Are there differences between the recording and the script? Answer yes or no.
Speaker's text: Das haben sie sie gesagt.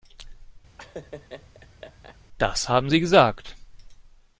yes